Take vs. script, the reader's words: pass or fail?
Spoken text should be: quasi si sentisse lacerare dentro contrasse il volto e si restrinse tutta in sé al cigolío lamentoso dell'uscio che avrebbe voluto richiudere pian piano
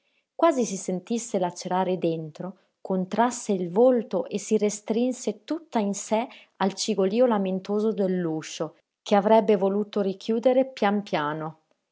pass